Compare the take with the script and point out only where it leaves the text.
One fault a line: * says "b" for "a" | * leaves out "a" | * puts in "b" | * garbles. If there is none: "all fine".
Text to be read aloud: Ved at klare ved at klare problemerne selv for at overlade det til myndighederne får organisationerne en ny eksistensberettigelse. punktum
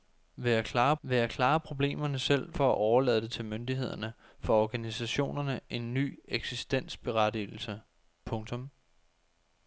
all fine